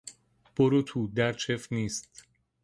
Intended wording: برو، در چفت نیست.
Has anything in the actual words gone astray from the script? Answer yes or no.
yes